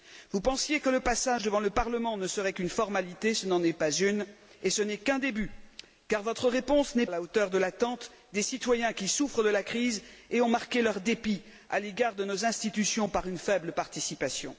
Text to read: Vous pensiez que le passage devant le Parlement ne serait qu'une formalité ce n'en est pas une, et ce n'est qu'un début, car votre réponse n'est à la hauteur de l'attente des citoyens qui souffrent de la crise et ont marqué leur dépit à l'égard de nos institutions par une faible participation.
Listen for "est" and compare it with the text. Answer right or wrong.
right